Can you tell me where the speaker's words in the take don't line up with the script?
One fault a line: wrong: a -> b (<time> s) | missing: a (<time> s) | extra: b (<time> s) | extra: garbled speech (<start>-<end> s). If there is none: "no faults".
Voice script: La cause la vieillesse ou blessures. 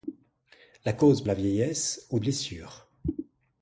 no faults